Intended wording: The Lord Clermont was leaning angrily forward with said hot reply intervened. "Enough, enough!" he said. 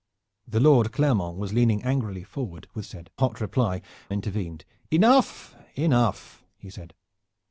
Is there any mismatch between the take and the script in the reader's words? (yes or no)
no